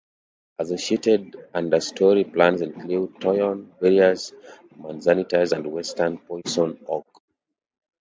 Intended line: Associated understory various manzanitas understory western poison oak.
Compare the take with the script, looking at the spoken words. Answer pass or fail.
fail